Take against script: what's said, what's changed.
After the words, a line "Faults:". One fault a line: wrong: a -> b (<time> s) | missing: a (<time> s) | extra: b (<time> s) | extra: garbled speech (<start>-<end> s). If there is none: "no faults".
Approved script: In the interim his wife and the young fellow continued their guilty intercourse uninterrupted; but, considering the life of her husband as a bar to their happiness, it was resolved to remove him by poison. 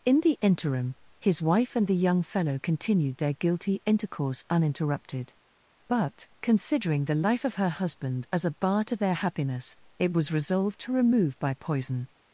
In the interim his wife and the young fellow continued their guilty intercourse uninterrupted; but, considering the life of her husband as a bar to their happiness, it was resolved to remove by poison.
Faults:
missing: him (11.4 s)